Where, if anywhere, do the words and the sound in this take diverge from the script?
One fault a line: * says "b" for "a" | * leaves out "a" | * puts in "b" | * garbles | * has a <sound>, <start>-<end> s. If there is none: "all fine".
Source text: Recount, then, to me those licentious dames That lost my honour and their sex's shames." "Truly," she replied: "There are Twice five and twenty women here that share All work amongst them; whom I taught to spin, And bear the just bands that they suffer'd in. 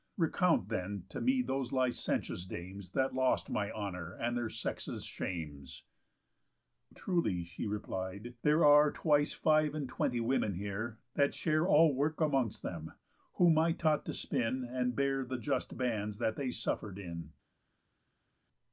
all fine